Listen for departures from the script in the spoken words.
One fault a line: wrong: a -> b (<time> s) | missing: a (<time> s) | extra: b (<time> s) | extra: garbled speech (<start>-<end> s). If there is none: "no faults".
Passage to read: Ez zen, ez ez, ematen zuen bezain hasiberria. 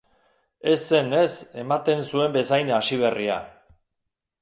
missing: ez (1.4 s)